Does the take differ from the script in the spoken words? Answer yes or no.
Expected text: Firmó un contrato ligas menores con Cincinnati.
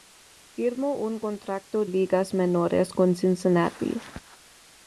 no